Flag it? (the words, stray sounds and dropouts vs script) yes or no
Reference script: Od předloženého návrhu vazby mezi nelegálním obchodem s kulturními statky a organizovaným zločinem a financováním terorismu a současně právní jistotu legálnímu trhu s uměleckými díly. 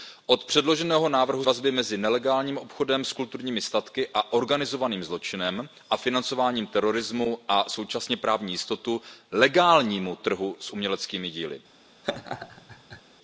yes